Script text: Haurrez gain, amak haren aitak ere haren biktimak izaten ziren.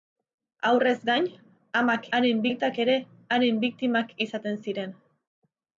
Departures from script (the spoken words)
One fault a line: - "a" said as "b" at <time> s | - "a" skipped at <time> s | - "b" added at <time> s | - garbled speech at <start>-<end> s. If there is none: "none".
none